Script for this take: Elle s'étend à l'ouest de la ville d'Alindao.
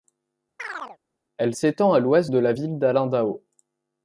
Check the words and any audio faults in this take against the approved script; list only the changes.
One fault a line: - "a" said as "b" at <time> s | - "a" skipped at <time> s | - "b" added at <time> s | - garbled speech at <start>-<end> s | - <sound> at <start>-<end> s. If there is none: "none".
- chirp at 0.6-1.0 s